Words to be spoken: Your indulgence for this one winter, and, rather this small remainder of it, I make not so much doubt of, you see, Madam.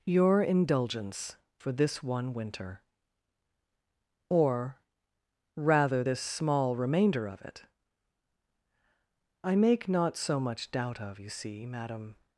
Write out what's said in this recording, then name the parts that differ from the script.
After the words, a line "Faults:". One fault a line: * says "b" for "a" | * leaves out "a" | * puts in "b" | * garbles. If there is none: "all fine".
Your indulgence for this one winter, or, rather this small remainder of it, I make not so much doubt of, you see, Madam.
Faults:
* says "or" for "and"